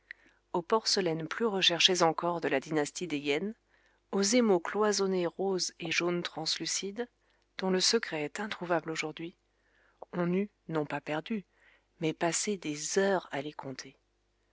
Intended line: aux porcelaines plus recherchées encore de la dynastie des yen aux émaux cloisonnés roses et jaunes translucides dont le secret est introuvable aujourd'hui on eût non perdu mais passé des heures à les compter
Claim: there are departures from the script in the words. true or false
true